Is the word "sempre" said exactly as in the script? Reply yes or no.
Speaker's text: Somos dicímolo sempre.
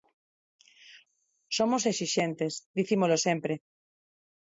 yes